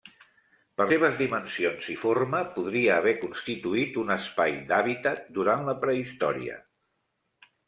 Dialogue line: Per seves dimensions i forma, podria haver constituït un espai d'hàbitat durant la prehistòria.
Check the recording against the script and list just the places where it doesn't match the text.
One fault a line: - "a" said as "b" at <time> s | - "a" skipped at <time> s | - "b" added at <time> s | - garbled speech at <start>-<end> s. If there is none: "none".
none